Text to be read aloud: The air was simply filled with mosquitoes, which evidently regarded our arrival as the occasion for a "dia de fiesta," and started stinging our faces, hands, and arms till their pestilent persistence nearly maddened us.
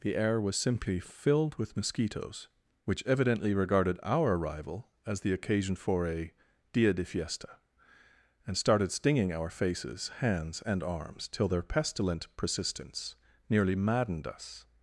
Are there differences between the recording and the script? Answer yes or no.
no